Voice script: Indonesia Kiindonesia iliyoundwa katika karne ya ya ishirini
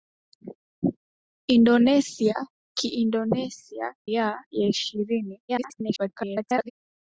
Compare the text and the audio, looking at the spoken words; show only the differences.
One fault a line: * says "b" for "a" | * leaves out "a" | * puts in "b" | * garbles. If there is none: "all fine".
* leaves out "iliyoundwa katika karne"
* garbles